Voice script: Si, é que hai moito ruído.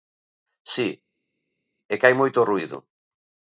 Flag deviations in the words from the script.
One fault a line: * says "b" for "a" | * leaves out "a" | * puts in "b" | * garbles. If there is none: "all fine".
all fine